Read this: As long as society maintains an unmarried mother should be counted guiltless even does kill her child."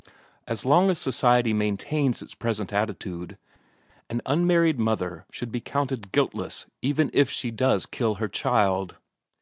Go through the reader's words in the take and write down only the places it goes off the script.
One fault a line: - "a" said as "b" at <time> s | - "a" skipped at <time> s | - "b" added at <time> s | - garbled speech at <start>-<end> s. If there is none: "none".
- "its present attitude" added at 2.2 s
- "if she" added at 7.1 s